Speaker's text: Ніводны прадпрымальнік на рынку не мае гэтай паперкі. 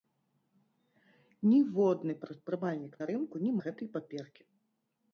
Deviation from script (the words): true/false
true